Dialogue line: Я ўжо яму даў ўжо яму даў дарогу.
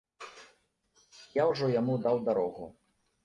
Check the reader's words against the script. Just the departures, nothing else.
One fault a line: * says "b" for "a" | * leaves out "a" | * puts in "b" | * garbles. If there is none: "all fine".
* leaves out "ўжо яму даў"